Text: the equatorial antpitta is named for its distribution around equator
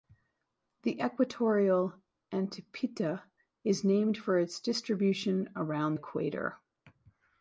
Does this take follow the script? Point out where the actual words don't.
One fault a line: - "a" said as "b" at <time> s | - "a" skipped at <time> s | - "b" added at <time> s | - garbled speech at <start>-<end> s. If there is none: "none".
none